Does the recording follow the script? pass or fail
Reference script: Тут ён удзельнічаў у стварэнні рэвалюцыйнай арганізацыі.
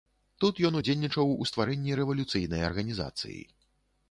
pass